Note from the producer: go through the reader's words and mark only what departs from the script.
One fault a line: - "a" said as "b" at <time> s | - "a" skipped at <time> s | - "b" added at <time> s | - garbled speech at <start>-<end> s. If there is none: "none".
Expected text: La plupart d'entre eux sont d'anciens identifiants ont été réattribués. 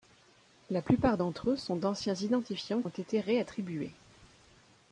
none